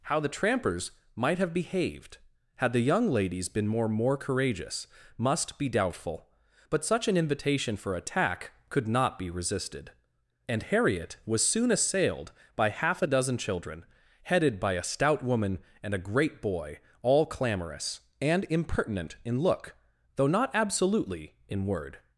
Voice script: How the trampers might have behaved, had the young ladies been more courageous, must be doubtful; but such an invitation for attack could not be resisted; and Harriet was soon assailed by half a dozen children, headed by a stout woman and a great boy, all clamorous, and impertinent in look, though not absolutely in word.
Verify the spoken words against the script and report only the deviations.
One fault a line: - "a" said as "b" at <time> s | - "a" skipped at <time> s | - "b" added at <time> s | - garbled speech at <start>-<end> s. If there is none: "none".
- "more" added at 3.9 s